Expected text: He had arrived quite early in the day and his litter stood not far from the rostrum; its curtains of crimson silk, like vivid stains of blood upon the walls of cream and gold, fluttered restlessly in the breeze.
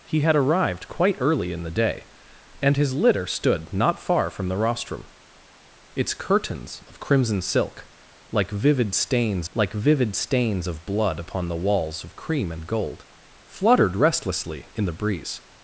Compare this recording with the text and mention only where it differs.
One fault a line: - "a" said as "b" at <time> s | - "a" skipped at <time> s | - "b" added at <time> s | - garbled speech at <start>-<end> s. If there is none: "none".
- "like vivid stains" added at 9.5 s